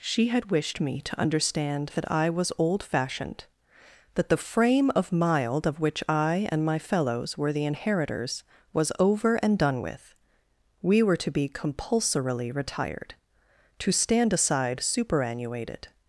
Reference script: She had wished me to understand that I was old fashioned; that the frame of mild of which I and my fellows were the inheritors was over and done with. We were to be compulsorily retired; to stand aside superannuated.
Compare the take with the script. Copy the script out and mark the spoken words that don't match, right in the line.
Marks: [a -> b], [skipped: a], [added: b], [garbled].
She had wished me to understand that I was old fashioned; that the frame of mild of which I and my fellows were the inheritors was over and done with. We were to be compulsorily retired; to stand aside superannuated.